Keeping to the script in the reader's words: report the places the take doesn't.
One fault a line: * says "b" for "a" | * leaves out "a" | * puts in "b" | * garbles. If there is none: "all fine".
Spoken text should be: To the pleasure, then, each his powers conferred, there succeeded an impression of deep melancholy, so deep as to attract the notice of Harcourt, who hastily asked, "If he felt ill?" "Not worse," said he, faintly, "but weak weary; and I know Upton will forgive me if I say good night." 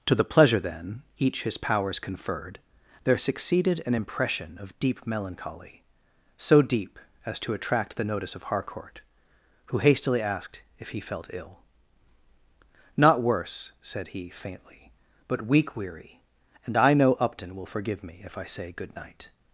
all fine